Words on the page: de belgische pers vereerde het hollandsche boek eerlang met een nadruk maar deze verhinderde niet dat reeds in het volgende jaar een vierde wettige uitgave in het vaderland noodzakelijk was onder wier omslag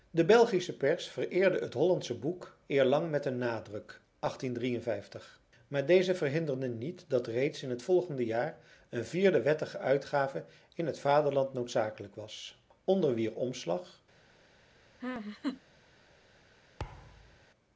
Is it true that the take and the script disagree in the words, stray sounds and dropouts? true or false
true